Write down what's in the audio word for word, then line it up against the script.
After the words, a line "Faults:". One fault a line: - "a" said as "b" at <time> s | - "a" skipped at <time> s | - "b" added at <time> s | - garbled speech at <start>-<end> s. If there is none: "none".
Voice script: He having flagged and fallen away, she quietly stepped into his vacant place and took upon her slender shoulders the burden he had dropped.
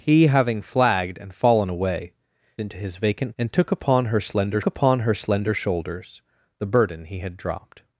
He having flagged and fallen away, into his vacant and took upon her slender upon her slender shoulders the burden he had dropped.
Faults:
- "she quietly stepped" skipped at 2.1 s
- "place" skipped at 3.3 s
- "upon her slender" added at 4.6 s